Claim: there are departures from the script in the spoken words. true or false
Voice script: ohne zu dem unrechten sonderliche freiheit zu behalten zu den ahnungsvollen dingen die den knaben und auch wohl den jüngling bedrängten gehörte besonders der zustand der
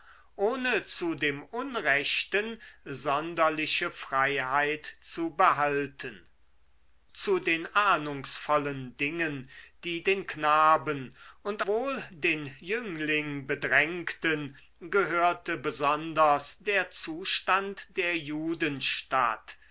true